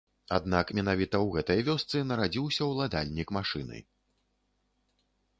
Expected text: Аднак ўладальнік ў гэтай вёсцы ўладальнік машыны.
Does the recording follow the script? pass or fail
fail